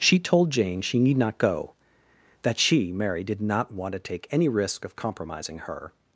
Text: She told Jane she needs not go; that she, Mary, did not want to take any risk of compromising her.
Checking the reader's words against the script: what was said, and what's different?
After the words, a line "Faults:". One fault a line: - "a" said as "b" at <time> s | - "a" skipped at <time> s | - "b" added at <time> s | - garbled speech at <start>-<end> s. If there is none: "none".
She told Jane she need not go; that she, Mary, did not want to take any risk of compromising her.
Faults:
- "needs" said as "need" at 1.0 s